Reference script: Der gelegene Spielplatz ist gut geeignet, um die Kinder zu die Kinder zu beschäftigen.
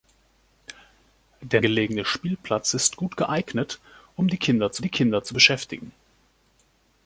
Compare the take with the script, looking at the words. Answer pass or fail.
pass